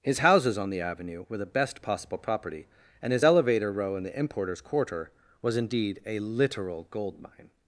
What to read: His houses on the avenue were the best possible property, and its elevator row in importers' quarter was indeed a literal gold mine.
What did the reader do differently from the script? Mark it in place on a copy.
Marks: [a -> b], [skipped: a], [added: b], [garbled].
His houses on the avenue were the best possible property, and [its -> his] elevator row in [added: the] importers' quarter was indeed a literal gold mine.